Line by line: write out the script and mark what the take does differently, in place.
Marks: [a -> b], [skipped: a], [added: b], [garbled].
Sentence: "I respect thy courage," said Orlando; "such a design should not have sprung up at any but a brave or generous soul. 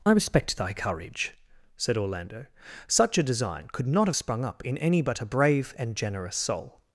"I respect thy courage," said Orlando; "such a design [should -> could] not have sprung up [at -> in] any but a brave [or -> and] generous soul.